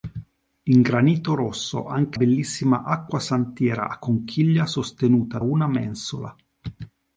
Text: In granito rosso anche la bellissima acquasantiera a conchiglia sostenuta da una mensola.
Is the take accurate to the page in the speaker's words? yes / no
no